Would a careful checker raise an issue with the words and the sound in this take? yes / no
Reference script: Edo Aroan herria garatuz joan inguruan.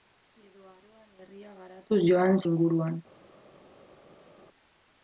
no